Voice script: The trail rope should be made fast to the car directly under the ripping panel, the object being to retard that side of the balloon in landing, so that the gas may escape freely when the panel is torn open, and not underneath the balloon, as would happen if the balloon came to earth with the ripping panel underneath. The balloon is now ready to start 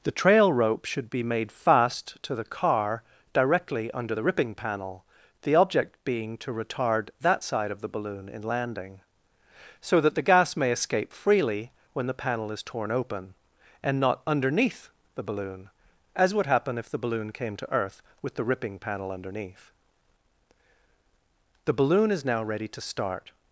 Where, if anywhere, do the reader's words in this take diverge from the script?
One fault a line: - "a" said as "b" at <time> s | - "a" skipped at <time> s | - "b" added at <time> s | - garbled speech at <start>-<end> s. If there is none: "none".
none